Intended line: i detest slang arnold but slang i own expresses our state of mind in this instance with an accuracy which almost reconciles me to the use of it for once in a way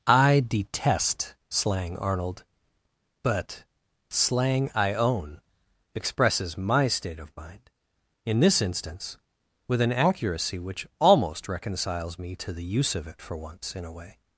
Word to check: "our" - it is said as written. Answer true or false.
false